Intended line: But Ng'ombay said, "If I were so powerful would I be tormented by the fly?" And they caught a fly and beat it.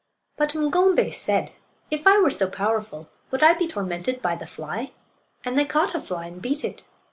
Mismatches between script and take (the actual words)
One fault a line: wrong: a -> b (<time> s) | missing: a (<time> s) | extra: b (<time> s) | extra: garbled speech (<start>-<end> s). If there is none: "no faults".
no faults